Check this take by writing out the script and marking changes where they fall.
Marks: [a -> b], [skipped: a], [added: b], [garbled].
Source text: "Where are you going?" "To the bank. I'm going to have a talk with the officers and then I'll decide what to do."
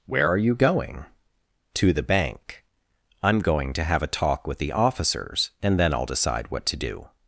"Where are you going?" "To the bank. I'm going to have a talk with the officers and then I'll decide what to do."